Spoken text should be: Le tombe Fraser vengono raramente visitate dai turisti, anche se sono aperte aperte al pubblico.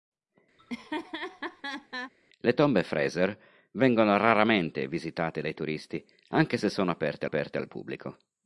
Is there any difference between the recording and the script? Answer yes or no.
no